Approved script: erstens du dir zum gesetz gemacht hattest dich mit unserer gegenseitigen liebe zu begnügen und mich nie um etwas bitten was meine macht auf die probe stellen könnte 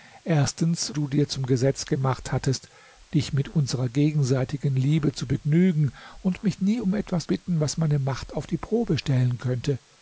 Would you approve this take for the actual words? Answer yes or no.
yes